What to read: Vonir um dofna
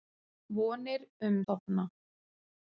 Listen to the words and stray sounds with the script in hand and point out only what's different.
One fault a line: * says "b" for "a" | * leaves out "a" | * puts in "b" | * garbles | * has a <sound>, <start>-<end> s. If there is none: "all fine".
all fine